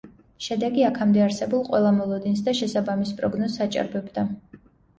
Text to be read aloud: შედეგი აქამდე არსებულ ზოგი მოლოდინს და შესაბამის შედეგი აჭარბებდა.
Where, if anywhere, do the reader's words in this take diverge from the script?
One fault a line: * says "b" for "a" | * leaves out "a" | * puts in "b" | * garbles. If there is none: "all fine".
* says "ყველა" for "ზოგი"
* says "პროგნოზს" for "შედეგი"